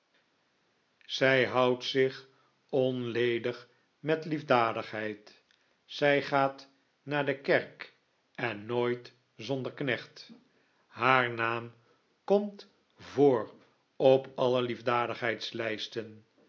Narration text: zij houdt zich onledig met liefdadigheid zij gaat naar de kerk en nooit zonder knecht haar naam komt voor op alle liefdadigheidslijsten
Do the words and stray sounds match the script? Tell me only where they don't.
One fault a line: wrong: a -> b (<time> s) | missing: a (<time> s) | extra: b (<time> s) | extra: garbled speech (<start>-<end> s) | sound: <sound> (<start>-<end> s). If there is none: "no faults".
no faults